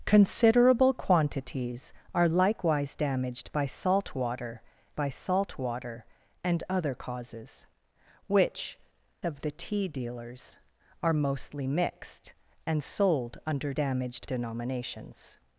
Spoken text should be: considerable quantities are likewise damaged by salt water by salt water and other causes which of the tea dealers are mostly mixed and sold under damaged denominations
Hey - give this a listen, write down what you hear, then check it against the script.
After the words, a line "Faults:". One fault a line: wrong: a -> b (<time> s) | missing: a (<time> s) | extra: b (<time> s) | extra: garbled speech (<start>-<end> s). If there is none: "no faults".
considerable quantities are likewise damaged by salt water by salt water and other causes which of the tea dealers are mostly mixed and sold under damaged denominations
Faults:
no faults